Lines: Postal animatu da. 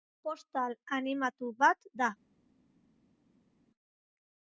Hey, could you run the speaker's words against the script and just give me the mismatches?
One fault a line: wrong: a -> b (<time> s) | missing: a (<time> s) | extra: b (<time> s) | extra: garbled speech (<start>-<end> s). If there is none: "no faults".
extra: bat (1.6 s)